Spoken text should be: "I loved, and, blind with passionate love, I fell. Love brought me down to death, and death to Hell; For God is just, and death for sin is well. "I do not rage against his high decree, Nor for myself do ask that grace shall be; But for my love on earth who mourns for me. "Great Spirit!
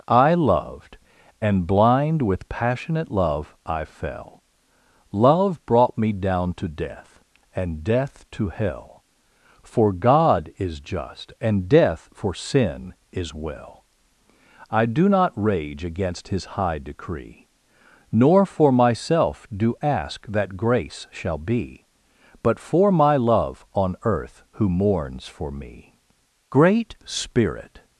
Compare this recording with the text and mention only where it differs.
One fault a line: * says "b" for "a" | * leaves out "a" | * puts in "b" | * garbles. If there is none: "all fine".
all fine